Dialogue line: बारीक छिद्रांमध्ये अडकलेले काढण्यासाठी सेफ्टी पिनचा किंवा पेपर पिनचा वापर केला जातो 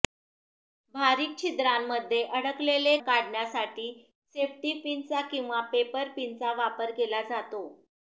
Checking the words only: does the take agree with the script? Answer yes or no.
yes